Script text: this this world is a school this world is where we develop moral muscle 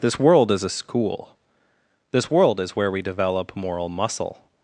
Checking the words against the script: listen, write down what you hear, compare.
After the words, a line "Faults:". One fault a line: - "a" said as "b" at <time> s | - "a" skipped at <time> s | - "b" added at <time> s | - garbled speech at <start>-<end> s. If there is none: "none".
this world is a school this world is where we develop moral muscle
Faults:
- "this" skipped at 0.2 s